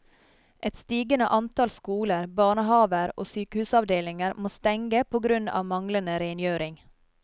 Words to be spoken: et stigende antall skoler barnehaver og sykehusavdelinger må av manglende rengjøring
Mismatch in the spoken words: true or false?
true